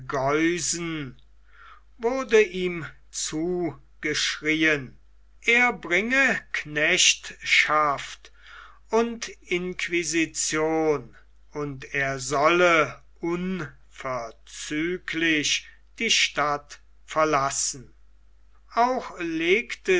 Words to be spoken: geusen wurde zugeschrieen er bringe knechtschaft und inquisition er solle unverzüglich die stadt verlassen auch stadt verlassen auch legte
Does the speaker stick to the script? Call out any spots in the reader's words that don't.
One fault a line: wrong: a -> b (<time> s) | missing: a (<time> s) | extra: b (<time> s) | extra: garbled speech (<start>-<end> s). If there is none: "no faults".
extra: ihm (2.4 s)
extra: und (11.5 s)
missing: stadt verlassen auch (19.2 s)